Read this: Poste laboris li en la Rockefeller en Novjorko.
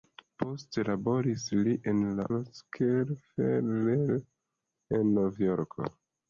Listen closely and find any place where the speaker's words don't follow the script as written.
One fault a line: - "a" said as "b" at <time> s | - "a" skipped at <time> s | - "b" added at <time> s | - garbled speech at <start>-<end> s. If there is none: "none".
none